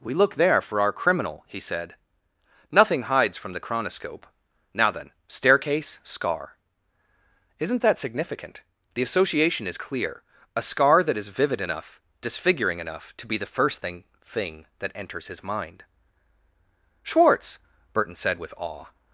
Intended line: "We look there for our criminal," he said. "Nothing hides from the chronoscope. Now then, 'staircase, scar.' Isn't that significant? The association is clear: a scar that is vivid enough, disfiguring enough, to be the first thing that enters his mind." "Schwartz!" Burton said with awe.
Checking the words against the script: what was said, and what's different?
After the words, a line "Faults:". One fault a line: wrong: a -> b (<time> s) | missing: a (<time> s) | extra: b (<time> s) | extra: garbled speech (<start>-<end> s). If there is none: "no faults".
"We look there for our criminal," he said. "Nothing hides from the chronoscope. Now then, 'staircase, scar.' Isn't that significant? The association is clear: a scar that is vivid enough, disfiguring enough, to be the first thing thing that enters his mind." "Schwartz!" Burton said with awe.
Faults:
extra: thing (14.2 s)